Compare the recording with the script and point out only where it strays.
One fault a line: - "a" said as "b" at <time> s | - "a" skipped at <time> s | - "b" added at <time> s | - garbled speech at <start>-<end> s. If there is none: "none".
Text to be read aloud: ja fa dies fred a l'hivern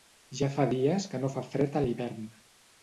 - "que no fa" added at 1.1 s